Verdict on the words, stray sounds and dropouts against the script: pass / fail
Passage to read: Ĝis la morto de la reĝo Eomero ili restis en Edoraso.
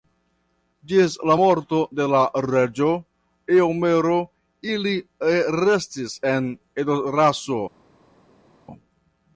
pass